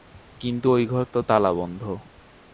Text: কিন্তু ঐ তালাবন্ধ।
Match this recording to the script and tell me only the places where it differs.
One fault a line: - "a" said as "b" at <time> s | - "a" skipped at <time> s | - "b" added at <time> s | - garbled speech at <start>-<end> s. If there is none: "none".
- "ঘর তো" added at 0.9 s